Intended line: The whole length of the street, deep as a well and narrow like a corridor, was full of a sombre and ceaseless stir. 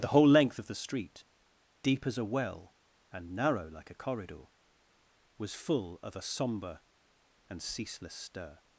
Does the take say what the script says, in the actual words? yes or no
yes